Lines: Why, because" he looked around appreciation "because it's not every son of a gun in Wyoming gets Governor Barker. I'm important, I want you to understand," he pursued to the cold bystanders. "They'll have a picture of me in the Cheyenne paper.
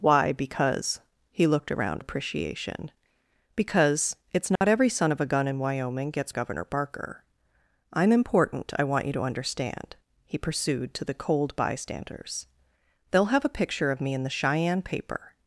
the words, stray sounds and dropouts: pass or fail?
fail